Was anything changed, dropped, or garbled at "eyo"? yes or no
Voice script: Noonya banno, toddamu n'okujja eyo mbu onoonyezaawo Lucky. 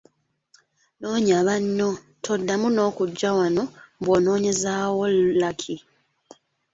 yes